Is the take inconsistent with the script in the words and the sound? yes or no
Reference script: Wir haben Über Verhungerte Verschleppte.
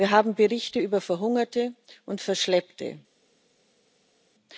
yes